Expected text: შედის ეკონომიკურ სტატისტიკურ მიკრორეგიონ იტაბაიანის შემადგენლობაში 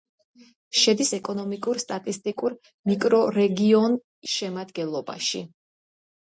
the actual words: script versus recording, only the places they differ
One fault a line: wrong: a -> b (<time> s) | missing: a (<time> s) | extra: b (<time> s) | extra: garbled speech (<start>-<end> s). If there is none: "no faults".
missing: იტაბაიანის (4.0 s)